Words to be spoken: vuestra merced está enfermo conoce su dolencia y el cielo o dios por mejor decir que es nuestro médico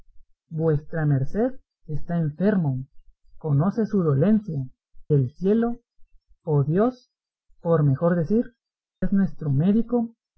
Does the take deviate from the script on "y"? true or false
true